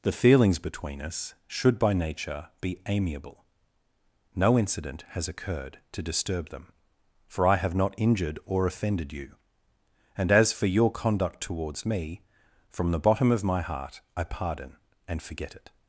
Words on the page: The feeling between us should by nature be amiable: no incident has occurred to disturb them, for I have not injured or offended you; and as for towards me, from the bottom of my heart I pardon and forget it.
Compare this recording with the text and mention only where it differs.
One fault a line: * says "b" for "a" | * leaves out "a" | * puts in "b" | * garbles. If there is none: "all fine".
* says "feelings" for "feeling"
* puts in "your conduct"